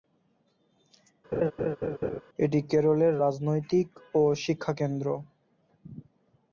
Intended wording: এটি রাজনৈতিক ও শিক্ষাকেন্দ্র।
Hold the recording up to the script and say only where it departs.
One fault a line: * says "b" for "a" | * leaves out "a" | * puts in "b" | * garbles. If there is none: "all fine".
* puts in "কেরলের"